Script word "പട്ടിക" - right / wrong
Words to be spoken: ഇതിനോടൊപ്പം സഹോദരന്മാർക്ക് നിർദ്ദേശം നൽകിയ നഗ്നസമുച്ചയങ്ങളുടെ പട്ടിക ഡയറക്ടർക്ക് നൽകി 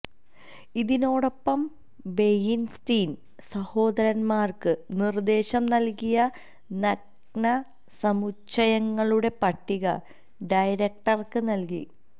right